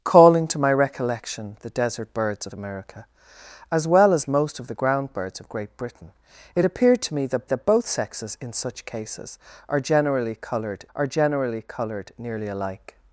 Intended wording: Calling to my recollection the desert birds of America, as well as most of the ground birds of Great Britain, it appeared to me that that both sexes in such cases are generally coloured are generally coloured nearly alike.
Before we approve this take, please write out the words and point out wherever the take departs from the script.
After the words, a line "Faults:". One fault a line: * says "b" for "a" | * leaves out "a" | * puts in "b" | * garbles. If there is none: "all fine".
Calling to my recollection the desert birds of America, as well as most of the ground birds of Great Britain, it appeared to me that that both sexes in such cases are generally coloured are generally coloured nearly alike.
Faults:
all fine